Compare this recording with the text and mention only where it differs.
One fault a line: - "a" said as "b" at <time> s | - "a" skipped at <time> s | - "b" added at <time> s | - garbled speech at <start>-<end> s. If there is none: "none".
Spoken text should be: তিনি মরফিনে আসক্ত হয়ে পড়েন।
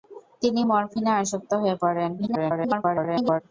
- garbled speech at 2.2-3.4 s